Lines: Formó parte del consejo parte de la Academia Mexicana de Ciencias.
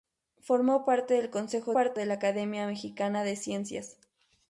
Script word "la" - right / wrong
right